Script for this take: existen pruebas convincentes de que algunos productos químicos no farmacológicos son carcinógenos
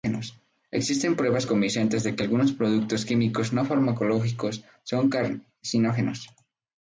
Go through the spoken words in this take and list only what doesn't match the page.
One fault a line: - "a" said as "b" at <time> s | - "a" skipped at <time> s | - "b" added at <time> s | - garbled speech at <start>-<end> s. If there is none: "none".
none